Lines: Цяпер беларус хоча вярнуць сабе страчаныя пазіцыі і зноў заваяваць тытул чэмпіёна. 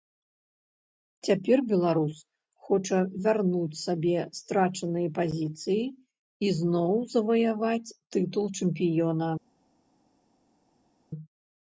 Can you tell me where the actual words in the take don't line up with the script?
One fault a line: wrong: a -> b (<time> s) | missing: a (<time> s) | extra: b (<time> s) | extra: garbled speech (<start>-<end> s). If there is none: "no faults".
no faults